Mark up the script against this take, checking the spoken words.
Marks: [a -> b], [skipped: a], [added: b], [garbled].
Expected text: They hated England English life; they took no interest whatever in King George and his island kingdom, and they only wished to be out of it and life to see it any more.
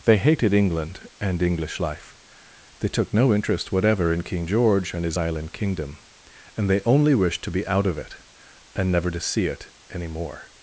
They hated England [added: and] English life; they took no interest whatever in King George and his island kingdom, and they only wished to be out of it and [life -> never] to see it any more.